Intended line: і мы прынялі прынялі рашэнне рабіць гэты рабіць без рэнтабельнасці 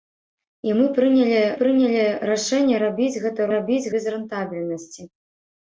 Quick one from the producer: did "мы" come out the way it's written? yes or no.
yes